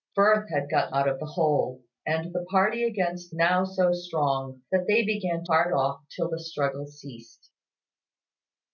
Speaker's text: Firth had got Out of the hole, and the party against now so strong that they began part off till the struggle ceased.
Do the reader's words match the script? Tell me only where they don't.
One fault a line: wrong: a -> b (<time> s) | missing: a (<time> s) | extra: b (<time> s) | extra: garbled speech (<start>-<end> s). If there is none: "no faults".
no faults